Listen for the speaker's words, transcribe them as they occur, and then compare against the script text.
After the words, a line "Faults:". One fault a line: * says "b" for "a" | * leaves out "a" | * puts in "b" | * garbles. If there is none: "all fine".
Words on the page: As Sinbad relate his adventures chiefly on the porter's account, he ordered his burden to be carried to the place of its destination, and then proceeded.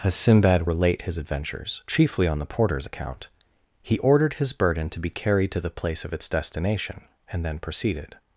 As Sinbad relate his adventures chiefly on the porter's account, he ordered his burden to be carried to the place of its destination, and then proceeded.
Faults:
all fine